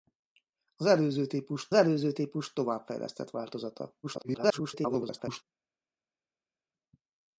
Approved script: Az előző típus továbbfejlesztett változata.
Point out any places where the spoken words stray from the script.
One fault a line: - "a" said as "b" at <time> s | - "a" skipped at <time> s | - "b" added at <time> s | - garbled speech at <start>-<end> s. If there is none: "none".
- "előző típus" added at 1.7 s
- garbled speech at 4.0-5.4 s